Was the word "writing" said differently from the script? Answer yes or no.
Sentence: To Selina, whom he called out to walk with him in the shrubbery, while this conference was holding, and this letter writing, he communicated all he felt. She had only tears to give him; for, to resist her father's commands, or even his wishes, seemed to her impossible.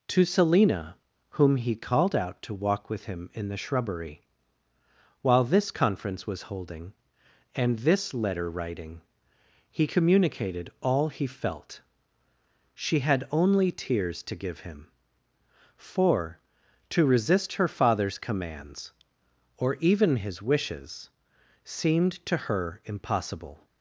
no